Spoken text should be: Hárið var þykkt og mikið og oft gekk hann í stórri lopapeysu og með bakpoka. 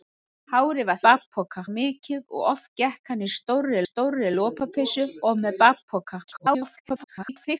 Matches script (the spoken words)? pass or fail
fail